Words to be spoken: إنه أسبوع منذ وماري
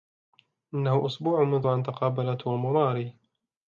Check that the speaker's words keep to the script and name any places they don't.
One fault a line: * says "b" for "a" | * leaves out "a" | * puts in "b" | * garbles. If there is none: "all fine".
* puts in "أن تقابل توم"